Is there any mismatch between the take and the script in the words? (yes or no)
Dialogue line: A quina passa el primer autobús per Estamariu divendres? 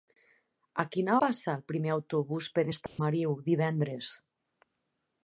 no